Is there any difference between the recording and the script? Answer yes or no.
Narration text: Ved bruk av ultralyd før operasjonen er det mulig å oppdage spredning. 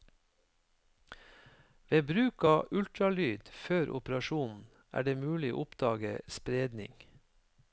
no